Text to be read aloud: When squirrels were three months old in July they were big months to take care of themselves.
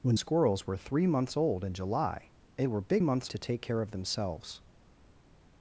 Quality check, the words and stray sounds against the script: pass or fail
pass